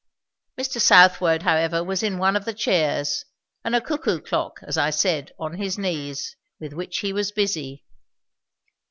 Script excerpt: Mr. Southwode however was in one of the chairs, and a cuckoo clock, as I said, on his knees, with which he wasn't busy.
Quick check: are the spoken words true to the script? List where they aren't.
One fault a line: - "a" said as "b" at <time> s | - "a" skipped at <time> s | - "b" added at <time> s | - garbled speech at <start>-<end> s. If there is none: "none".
- "wasn't" said as "was" at 7.1 s